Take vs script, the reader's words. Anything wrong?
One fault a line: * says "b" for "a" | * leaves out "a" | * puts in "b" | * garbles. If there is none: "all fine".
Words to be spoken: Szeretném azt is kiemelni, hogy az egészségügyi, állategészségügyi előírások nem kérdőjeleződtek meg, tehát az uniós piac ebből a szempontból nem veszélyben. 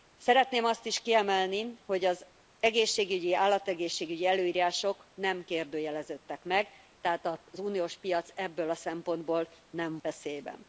all fine